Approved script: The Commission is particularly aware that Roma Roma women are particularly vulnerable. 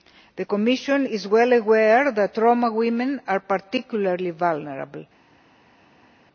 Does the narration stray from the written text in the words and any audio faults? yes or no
yes